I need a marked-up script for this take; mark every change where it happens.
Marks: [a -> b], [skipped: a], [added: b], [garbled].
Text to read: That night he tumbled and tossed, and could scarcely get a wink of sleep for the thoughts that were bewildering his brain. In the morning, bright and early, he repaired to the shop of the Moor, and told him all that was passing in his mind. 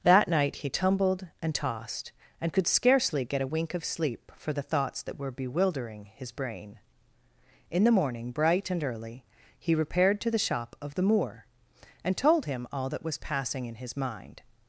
That night he tumbled and tossed, and could scarcely get a wink of sleep for the thoughts that were bewildering his brain. In the morning, bright and early, he repaired to the shop of the Moor, and told him all that was passing in his mind.